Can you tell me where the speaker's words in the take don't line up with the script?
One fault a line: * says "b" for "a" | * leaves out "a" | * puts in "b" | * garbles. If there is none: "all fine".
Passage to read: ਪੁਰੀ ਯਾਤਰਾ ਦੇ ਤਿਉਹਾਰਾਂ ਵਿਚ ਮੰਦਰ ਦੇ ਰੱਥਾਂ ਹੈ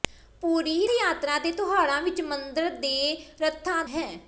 all fine